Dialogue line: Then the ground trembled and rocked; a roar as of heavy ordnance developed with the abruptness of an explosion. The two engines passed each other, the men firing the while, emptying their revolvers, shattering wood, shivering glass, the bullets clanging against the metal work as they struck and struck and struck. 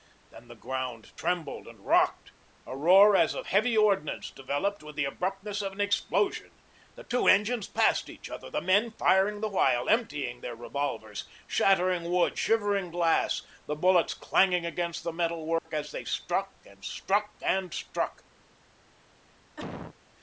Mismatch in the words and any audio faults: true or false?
true